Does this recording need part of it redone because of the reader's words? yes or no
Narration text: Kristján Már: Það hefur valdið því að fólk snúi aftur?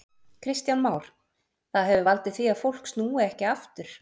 yes